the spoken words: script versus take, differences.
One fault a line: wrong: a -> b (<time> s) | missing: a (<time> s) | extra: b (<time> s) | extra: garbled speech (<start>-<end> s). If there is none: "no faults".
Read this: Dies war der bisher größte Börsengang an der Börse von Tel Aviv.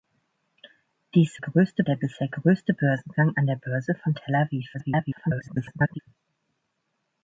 wrong: war -> größte (1.4 s)
extra: garbled speech (4.7-6.0 s)